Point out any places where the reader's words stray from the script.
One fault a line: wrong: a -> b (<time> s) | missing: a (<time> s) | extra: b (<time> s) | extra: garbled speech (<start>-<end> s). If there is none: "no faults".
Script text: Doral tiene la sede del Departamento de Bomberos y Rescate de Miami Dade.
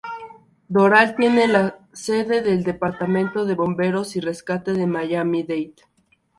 no faults